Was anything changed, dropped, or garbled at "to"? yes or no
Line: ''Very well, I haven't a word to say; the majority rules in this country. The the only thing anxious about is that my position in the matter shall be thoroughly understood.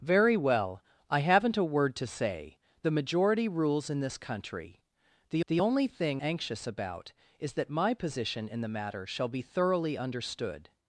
no